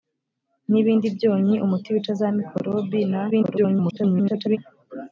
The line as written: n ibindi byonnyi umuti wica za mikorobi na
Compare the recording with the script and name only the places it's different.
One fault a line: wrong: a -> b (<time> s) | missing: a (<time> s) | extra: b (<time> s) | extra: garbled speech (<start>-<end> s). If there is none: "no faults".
extra: garbled speech (3.3-4.6 s)